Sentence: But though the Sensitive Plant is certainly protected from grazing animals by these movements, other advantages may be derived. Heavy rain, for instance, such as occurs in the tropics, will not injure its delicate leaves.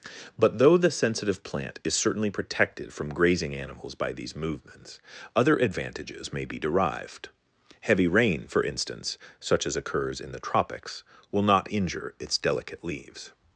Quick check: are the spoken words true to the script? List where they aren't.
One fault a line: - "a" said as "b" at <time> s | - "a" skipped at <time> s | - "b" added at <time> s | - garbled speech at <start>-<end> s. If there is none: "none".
none